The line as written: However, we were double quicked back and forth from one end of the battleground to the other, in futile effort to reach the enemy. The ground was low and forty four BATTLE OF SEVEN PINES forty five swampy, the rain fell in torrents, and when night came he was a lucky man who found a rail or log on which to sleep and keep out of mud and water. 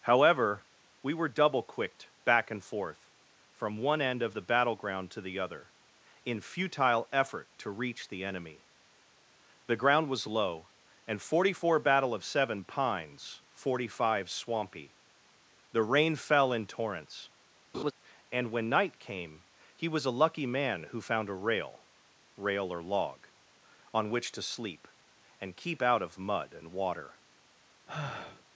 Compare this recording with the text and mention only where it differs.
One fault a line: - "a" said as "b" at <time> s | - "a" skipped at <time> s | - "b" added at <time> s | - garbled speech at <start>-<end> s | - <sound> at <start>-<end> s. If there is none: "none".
- laugh at 17.7-17.9 s
- "rail" added at 22.4 s
- sigh at 27.9-28.4 s